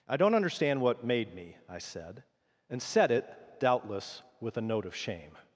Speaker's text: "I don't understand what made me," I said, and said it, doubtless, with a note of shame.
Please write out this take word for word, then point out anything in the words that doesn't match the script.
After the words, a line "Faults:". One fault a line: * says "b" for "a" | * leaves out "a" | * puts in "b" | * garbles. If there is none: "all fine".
"I don't understand what made me," I said, and said it, doubtless, with a note of shame.
Faults:
all fine